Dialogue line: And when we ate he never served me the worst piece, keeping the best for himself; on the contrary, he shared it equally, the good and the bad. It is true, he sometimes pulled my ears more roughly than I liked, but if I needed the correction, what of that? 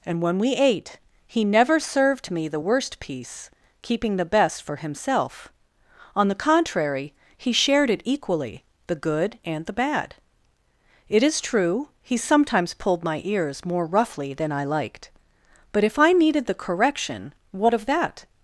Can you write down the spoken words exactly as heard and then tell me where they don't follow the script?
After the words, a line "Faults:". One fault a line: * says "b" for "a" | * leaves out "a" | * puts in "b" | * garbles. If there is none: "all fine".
And when we ate he never served me the worst piece, keeping the best for himself; on the contrary, he shared it equally, the good and the bad. It is true, he sometimes pulled my ears more roughly than I liked, but if I needed the correction, what of that?
Faults:
all fine